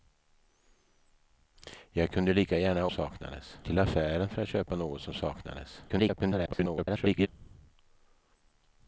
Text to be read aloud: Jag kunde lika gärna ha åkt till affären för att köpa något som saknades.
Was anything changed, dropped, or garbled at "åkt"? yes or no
yes